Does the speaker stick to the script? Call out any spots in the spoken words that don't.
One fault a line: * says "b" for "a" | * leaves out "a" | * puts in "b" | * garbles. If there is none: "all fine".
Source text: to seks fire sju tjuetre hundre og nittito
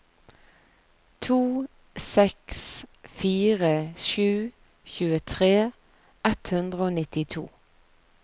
* puts in "ett"